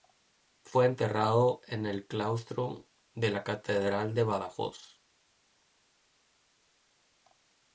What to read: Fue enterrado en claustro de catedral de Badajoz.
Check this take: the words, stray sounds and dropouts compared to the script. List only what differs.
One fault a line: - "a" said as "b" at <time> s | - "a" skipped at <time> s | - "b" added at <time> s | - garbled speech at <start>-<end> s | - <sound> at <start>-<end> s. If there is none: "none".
- "el" added at 1.9 s
- "la" added at 3.3 s